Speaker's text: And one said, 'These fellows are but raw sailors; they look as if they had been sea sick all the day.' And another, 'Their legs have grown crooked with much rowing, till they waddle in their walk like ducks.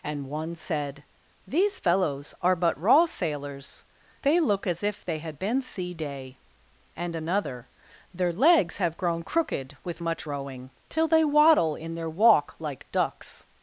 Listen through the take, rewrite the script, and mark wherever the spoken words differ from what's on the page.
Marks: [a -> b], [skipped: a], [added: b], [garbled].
And one said, 'These fellows are but raw sailors; they look as if they had been sea [skipped: sick all the] day.' And another, 'Their legs have grown crooked with much rowing, till they waddle in their walk like ducks.